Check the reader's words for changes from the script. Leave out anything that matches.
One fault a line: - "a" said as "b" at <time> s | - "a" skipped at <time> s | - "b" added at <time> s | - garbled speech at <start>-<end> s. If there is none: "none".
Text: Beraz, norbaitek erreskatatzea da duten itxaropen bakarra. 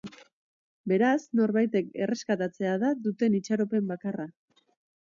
none